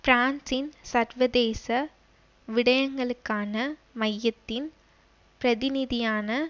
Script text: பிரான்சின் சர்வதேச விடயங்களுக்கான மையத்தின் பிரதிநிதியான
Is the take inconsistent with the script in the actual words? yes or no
no